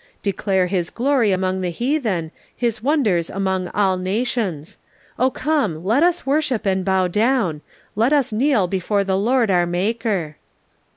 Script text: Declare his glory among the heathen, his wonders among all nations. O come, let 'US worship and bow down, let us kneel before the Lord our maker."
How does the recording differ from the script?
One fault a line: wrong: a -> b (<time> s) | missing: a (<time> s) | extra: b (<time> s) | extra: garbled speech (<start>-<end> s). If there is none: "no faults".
no faults